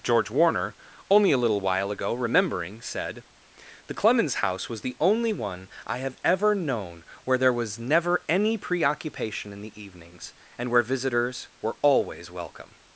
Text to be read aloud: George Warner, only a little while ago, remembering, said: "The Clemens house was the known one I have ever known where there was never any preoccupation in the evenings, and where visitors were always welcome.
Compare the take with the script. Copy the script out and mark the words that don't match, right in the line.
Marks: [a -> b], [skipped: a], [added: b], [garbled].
George Warner, only a little while ago, remembering, said: "The Clemens house was the [known -> only] one I have ever known where there was never any preoccupation in the evenings, and where visitors were always welcome.